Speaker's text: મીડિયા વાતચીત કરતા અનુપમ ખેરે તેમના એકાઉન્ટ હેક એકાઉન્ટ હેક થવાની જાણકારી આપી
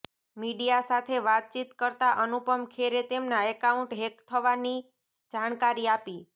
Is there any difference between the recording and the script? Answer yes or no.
yes